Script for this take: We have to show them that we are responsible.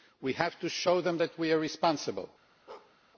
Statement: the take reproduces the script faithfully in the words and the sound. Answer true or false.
false